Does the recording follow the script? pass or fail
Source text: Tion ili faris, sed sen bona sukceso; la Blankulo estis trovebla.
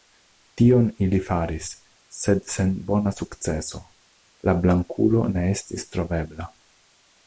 fail